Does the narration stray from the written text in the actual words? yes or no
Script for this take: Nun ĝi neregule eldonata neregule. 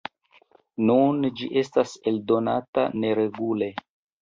yes